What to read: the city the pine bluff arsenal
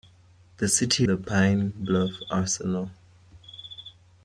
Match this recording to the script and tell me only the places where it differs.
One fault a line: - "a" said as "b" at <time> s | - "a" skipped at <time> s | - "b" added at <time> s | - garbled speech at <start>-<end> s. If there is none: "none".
none